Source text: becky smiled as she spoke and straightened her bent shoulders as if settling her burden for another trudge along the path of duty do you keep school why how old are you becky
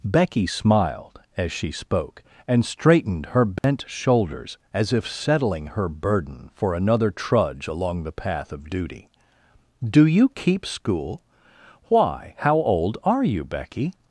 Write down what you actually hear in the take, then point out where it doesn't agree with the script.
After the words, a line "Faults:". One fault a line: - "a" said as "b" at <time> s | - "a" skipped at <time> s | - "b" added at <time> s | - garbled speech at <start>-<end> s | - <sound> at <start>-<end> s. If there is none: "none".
becky smiled as she spoke and straightened her bent shoulders as if settling her burden for another trudge along the path of duty do you keep school why how old are you becky
Faults:
- dropout at 3.6-3.6 s